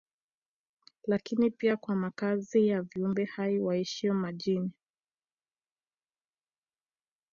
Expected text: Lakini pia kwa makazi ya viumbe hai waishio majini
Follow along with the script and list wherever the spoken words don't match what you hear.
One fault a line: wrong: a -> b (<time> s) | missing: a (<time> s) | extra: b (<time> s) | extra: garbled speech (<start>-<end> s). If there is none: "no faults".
no faults